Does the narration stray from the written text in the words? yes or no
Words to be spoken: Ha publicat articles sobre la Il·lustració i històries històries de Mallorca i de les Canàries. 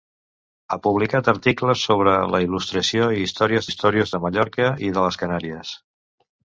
no